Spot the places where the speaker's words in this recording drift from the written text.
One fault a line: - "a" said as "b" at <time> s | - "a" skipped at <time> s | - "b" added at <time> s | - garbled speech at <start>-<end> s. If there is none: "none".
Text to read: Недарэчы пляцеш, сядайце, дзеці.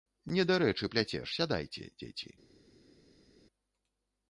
none